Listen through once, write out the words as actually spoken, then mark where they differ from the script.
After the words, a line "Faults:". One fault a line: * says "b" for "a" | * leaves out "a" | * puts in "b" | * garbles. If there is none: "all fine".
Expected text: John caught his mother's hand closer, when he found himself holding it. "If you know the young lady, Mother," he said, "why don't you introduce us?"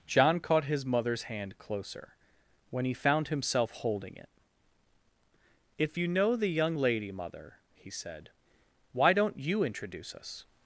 John caught his mother's hand closer, when he found himself holding it. "If you know the young lady, Mother," he said, "why don't you introduce us?"
Faults:
all fine